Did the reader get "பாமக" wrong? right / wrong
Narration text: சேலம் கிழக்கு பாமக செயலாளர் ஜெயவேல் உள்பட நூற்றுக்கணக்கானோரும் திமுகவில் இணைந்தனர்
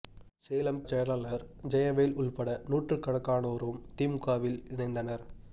wrong